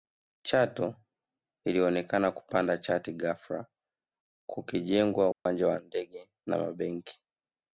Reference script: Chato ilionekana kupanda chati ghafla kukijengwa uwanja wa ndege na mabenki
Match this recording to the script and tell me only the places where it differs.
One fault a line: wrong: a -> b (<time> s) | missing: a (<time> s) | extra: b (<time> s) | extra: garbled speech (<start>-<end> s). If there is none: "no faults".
no faults